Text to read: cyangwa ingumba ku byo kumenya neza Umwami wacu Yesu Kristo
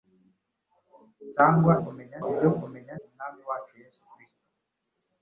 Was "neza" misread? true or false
true